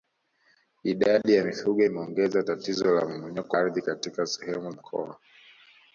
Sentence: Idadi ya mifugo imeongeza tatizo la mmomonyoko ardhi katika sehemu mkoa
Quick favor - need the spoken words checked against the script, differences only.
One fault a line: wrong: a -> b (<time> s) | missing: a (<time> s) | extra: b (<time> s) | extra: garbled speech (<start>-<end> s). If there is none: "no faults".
no faults